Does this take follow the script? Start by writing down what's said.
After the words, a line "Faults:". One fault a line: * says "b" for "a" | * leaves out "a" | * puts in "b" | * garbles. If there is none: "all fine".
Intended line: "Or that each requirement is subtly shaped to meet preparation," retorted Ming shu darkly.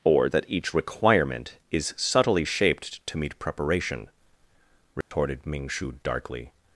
"Or that each requirement is subtly shaped to meet preparation," retorted Ming shu darkly.
Faults:
all fine